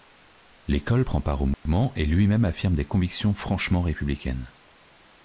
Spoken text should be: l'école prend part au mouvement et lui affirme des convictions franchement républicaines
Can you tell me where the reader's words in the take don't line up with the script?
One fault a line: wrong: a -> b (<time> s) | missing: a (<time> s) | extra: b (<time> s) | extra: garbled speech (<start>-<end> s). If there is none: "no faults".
extra: même (2.3 s)